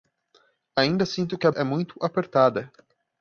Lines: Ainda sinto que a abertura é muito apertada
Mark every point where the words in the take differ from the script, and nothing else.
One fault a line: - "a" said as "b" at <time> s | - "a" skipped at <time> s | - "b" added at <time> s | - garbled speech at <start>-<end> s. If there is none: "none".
- "abertura" skipped at 1.5 s